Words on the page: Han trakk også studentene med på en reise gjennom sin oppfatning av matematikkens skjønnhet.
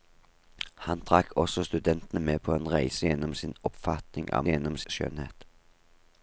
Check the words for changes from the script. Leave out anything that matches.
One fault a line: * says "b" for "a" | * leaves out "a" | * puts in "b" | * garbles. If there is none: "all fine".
* says "gjennom" for "matematikkens"